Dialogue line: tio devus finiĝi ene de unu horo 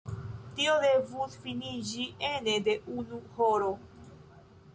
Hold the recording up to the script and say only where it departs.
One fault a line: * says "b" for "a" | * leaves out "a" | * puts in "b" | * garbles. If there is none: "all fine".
all fine